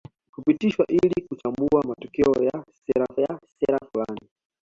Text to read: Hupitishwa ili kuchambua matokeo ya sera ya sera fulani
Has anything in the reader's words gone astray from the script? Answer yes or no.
no